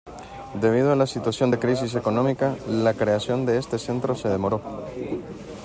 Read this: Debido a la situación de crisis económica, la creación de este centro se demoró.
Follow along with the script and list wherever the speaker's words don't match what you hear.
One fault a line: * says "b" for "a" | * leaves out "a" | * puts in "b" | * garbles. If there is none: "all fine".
all fine